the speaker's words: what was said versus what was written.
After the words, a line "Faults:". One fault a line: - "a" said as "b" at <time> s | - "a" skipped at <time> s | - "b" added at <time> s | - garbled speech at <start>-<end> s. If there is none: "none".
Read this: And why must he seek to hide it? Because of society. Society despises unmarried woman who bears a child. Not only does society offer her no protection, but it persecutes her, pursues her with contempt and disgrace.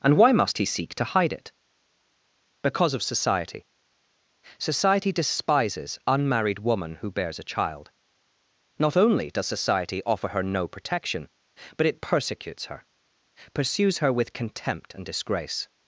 And why must he seek to hide it? Because of society. Society despises unmarried woman who bears a child. Not only does society offer her no protection, but it persecutes her, pursues her with contempt and disgrace.
Faults:
none